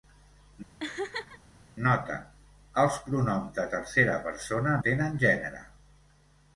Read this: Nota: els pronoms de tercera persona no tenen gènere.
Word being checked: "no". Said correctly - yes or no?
no